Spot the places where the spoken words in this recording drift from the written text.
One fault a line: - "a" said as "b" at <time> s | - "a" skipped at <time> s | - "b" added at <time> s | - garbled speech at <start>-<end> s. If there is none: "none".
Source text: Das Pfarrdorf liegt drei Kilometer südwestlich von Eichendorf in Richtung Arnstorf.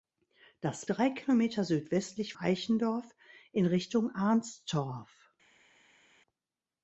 - "Pfarrdorf liegt" skipped at 0.8 s
- "von" skipped at 2.3 s